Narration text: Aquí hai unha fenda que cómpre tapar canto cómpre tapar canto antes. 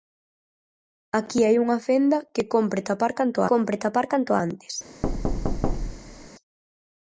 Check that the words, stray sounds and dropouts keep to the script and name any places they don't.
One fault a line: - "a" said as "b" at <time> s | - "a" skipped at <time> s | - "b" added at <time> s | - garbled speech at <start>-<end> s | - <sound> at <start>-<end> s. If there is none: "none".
- thud at 5.0-6.3 s